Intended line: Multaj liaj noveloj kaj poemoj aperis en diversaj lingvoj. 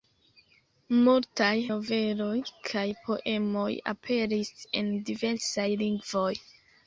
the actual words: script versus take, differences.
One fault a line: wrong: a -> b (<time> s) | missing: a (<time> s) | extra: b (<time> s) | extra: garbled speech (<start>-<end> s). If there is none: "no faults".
missing: liaj (1.5 s)